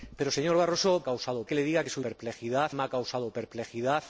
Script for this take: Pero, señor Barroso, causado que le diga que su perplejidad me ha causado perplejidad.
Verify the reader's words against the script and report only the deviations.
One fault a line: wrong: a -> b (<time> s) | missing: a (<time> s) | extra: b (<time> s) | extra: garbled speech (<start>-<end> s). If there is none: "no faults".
no faults